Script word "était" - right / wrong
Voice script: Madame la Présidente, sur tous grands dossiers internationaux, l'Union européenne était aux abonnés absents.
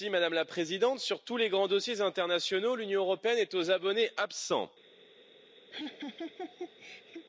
wrong